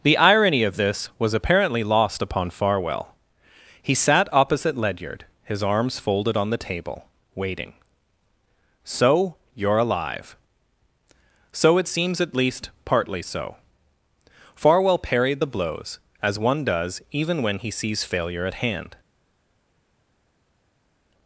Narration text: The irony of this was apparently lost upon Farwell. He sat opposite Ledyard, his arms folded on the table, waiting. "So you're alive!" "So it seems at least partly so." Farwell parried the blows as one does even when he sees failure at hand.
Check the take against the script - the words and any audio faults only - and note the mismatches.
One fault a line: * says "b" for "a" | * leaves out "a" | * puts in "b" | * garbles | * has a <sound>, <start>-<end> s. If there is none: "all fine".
all fine